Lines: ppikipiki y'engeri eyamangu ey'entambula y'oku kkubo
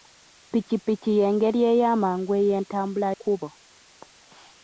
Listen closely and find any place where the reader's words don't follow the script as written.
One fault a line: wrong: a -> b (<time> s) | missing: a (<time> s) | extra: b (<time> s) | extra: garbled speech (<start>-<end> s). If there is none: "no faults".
missing: y'oku (3.1 s)